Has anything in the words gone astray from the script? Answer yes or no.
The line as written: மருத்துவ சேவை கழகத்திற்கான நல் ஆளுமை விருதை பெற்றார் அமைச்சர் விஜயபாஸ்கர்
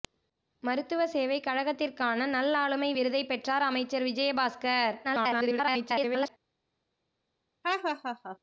yes